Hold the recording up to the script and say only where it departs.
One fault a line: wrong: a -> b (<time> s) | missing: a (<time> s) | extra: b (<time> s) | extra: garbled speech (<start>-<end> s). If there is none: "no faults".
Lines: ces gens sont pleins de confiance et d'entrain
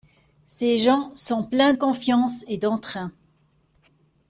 missing: de (1.7 s)